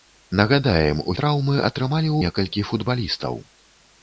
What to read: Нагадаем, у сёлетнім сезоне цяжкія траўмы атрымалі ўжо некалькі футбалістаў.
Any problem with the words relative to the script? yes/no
yes